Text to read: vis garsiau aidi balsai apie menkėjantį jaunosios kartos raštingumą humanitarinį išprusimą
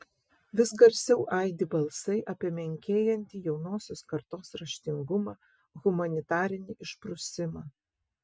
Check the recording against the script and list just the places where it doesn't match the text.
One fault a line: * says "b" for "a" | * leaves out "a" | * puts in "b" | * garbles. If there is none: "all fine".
all fine